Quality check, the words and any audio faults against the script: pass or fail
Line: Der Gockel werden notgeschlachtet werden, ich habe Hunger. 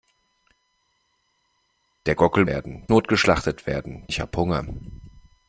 pass